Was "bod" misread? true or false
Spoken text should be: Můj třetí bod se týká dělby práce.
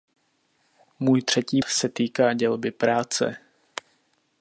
true